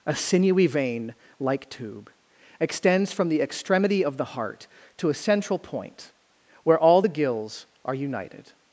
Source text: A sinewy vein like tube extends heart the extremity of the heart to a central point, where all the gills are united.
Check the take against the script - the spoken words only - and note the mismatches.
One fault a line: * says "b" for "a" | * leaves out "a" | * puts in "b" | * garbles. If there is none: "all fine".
* says "from" for "heart"